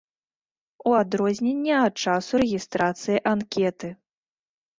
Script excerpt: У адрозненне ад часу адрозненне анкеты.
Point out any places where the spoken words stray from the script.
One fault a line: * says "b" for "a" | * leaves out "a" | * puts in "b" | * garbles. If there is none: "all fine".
* says "рэгістрацыі" for "адрозненне"